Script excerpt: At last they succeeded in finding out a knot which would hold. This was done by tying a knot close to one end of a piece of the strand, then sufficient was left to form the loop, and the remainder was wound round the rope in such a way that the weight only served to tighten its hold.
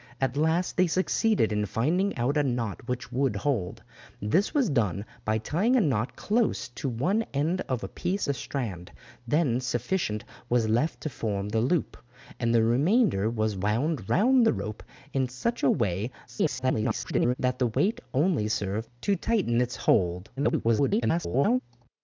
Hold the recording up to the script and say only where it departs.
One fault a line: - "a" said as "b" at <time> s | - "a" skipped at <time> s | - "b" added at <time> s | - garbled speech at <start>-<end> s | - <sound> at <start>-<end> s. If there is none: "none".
- "of" skipped at 8.2 s
- garbled speech at 16.3-17.4 s
- garbled speech at 20.4-21.6 s